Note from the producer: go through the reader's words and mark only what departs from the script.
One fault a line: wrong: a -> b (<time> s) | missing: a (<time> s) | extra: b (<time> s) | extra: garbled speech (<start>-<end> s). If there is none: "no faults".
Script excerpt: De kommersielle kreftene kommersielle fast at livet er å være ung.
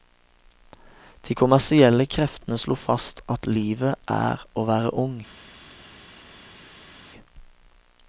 wrong: kommersielle -> slo (2.6 s)